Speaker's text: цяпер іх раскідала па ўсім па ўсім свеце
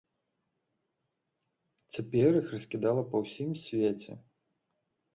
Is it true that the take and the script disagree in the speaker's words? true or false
true